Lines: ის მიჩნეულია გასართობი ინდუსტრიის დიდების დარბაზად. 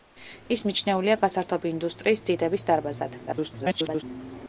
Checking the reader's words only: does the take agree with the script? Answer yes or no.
no